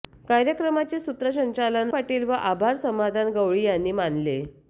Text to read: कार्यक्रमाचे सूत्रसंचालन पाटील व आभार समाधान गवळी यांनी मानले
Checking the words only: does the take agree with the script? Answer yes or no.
yes